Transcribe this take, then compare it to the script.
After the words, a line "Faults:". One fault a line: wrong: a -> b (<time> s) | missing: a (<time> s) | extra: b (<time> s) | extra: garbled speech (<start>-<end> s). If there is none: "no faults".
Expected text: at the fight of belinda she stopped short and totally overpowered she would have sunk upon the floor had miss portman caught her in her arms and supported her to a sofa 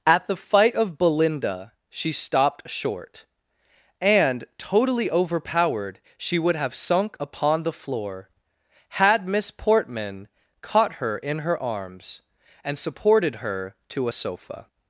at the fight of belinda she stopped short and totally overpowered she would have sunk upon the floor had miss portman caught her in her arms and supported her to a sofa
Faults:
no faults